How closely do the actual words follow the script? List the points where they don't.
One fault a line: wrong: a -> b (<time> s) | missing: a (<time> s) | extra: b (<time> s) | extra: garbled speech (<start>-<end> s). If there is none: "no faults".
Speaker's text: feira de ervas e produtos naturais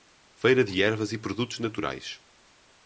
no faults